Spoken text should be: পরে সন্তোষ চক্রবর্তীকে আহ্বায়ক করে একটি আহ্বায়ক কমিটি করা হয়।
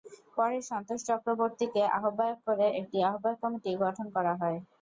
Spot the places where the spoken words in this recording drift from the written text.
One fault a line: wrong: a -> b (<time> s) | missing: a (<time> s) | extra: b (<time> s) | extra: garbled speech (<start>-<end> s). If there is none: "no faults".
extra: গঠন (3.8 s)